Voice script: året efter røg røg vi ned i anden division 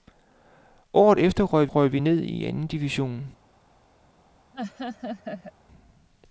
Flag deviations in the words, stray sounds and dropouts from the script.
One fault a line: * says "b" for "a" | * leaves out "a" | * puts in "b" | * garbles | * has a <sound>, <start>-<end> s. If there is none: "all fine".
* has a laugh, 4.5-5.5 s